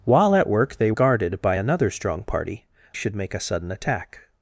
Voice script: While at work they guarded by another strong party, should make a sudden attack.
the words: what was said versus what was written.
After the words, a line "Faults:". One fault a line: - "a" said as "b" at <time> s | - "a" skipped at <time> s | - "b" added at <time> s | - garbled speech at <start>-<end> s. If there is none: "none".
While at work they guarded by another strong party, should make a sudden attack.
Faults:
none